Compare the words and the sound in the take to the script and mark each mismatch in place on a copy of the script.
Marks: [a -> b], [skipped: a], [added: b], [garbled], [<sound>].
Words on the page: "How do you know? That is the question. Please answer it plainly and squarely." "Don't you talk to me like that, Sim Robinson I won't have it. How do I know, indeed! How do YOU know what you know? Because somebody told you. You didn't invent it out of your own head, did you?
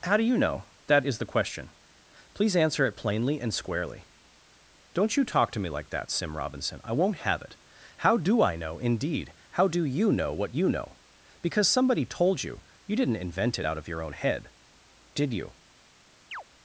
"How do you know? That is the question. Please answer it plainly and squarely." "Don't you talk to me like that, Sim Robinson I won't have it. How do I know, indeed! How do YOU know what you know? Because somebody told you. You didn't invent it out of your own head, did you? [chirp]